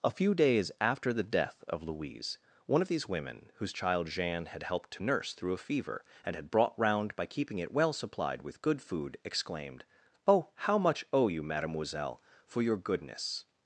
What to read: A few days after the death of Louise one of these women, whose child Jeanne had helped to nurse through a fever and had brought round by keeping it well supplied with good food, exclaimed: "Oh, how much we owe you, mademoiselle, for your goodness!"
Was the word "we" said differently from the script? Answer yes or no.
yes